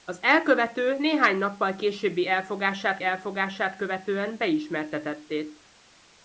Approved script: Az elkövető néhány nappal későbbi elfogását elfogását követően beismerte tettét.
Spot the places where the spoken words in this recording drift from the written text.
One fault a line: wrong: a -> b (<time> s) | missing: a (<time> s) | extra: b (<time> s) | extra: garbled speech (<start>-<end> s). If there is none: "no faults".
no faults